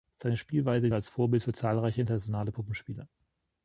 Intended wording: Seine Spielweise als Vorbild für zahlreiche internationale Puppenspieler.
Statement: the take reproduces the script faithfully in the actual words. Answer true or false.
true